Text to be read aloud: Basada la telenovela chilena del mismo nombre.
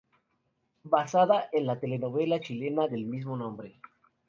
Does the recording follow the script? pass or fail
fail